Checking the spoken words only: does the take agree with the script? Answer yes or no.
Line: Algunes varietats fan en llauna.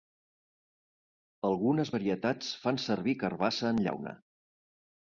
no